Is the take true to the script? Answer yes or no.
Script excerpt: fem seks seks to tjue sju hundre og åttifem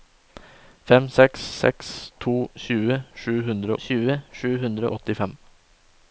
no